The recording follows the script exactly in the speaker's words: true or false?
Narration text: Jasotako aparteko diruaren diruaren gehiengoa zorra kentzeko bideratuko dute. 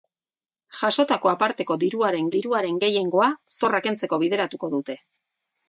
true